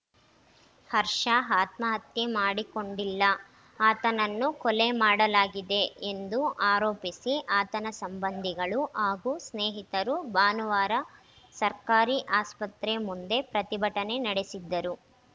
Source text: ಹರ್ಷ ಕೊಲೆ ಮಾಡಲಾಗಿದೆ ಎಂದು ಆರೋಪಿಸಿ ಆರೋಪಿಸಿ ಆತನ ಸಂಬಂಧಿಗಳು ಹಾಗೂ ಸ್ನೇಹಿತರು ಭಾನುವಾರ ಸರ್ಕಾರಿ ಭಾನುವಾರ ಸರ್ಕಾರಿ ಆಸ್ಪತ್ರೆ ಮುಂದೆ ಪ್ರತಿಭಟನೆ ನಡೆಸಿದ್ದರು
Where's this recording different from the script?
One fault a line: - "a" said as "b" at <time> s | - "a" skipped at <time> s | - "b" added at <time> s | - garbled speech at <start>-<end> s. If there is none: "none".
- "ಆತ್ಮಹತ್ಯೆ ಮಾಡಿಕೊಂಡಿಲ್ಲ ಆತನನ್ನು" added at 1.6 s
- "ಆರೋಪಿಸಿ" skipped at 7.3 s
- "ಭಾನುವಾರ ಸರ್ಕಾರಿ" skipped at 12.2 s